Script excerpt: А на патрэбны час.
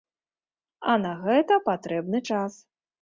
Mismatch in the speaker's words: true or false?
true